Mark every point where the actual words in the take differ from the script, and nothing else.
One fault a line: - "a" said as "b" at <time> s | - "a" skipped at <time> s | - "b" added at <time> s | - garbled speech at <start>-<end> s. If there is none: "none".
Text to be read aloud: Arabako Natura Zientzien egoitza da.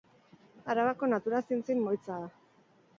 none